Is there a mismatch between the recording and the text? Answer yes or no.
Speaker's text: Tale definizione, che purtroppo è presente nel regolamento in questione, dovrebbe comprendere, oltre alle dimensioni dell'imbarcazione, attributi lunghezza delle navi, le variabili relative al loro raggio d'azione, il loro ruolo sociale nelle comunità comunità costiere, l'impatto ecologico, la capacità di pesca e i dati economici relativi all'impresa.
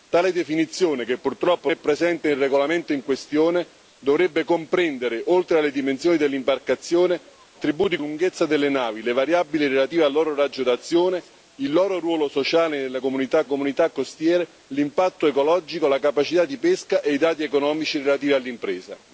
no